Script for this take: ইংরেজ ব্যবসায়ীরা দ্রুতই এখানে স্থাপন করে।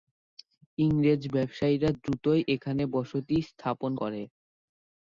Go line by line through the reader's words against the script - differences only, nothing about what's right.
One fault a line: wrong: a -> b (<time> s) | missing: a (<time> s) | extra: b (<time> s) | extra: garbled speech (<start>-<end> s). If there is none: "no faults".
extra: বসতি (2.9 s)